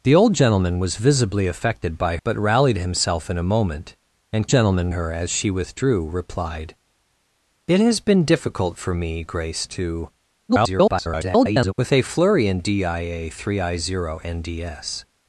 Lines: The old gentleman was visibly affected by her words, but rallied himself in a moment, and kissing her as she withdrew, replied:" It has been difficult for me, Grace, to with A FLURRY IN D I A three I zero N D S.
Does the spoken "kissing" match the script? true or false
false